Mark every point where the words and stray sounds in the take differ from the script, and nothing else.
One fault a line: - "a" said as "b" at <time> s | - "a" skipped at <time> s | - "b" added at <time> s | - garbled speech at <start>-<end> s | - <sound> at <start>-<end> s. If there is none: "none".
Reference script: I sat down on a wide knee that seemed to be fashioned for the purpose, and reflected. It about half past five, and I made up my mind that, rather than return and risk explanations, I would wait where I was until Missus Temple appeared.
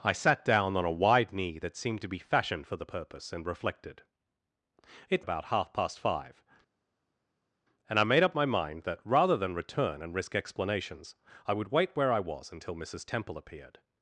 none